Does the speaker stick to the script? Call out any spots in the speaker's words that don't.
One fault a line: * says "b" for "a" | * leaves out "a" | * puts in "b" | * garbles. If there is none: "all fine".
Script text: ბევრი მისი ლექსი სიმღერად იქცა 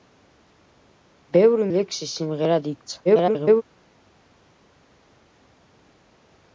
* leaves out "მისი"
* garbles